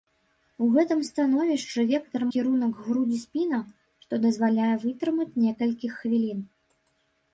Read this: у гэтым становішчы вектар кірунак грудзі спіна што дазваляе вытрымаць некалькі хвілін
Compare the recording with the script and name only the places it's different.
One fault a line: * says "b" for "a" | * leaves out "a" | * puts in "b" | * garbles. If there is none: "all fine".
all fine